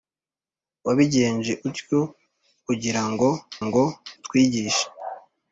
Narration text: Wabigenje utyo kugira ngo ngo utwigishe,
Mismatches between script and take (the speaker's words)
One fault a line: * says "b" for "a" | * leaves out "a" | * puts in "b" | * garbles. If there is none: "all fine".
all fine